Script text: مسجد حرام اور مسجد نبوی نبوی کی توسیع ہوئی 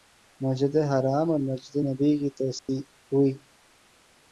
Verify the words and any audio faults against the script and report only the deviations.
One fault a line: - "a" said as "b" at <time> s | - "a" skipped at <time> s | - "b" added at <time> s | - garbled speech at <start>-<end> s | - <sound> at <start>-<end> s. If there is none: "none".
- "نبوی" skipped at 2.1 s
- dropout at 2.6-2.7 s